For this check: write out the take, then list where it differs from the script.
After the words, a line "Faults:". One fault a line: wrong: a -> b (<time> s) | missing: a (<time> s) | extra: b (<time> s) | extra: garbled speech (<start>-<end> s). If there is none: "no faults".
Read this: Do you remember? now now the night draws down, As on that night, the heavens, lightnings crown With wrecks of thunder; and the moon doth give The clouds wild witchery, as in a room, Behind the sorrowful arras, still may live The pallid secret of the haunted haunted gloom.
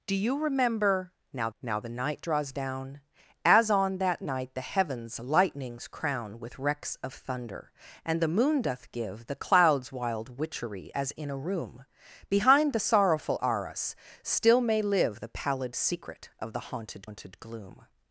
Do you remember? now now the night draws down, As on that night, the heavens, lightnings crown With wrecks of thunder; and the moon doth give The clouds wild witchery, as in a room, Behind the sorrowful arras, still may live The pallid secret of the haunted haunted gloom.
Faults:
no faults